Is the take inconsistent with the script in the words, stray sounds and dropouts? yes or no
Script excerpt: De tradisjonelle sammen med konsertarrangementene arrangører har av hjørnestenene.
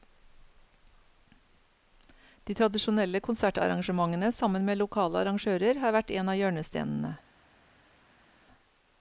yes